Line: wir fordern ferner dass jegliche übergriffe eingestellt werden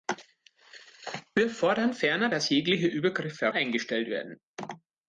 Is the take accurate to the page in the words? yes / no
yes